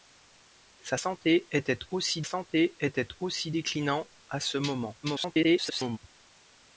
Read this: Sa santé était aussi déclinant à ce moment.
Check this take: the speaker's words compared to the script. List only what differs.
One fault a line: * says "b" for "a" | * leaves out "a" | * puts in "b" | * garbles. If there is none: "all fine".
* puts in "santé était aussi"
* garbles